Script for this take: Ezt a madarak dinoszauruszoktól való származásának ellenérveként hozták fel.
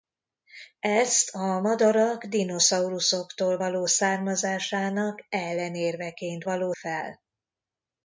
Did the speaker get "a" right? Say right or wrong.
right